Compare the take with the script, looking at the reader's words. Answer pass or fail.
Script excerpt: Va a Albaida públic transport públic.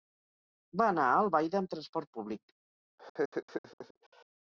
fail